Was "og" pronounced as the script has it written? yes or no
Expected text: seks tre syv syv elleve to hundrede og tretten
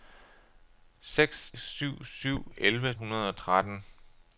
yes